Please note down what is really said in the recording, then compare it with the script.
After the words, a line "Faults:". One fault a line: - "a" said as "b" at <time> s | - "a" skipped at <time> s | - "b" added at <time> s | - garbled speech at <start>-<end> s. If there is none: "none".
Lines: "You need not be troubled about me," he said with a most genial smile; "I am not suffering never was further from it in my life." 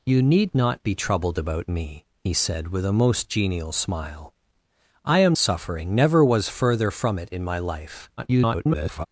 "You need not be troubled about me," he said with a most genial smile; "I am suffering never was further from it in my life." [garbled]
Faults:
- "not" skipped at 5.4 s
- garbled speech at 8.2-9.1 s